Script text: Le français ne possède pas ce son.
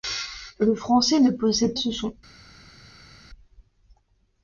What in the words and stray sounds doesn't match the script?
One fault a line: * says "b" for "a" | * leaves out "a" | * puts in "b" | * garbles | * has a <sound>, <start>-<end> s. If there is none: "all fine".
* leaves out "pas"